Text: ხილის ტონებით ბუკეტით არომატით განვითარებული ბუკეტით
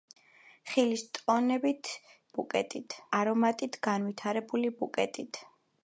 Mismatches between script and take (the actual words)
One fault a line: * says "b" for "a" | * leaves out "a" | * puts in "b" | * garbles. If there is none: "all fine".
all fine